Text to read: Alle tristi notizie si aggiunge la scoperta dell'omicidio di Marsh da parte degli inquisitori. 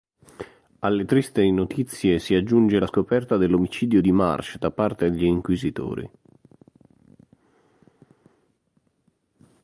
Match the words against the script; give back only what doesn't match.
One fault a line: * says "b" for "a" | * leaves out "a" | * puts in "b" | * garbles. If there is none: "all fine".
all fine